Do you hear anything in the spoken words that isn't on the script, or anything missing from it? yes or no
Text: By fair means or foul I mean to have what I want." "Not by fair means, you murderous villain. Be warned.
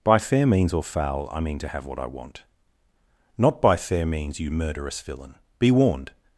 no